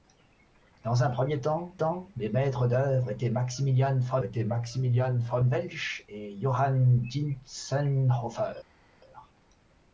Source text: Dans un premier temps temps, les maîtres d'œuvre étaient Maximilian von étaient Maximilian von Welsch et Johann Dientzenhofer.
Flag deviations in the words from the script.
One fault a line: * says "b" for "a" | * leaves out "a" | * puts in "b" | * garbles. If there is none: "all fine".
all fine